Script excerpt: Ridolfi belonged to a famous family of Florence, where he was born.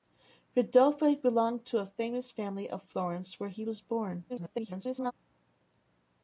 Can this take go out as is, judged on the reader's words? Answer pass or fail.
fail